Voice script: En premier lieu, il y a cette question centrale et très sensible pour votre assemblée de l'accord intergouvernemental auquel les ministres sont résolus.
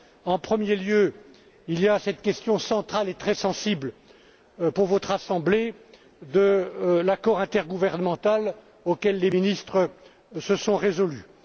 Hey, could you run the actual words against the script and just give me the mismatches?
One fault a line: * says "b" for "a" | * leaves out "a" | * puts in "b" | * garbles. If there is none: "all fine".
* puts in "se"